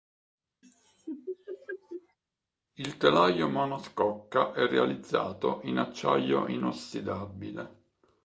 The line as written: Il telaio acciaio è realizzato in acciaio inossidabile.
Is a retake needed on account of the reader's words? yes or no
yes